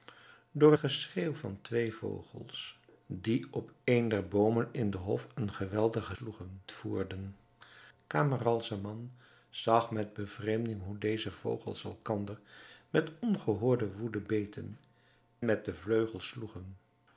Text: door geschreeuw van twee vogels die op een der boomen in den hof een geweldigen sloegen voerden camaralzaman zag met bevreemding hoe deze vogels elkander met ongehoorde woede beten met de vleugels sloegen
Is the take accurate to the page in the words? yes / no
yes